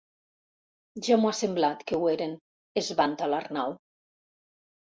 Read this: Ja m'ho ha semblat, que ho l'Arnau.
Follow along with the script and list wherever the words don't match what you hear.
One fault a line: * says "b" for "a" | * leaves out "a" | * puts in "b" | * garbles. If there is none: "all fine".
* puts in "eren es vanta"